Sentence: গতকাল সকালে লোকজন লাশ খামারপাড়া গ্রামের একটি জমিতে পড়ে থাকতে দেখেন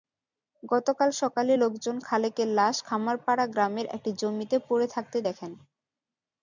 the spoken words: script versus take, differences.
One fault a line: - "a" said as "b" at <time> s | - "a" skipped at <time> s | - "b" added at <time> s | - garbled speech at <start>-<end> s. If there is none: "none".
- "খালেকের" added at 2.0 s